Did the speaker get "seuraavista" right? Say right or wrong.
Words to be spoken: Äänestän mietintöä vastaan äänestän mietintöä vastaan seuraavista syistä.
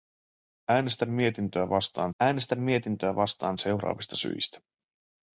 right